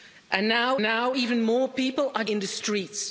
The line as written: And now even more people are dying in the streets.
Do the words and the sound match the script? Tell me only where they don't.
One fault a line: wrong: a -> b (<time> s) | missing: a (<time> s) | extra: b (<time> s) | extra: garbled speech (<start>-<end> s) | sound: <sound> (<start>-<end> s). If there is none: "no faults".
extra: now (0.8 s)
missing: dying (2.2 s)